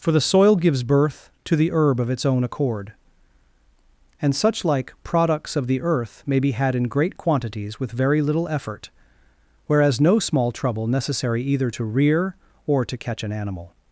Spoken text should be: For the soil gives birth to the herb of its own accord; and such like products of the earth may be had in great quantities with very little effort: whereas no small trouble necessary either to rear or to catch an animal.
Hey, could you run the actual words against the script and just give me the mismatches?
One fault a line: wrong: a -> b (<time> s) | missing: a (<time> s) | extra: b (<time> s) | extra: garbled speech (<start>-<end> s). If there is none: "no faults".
no faults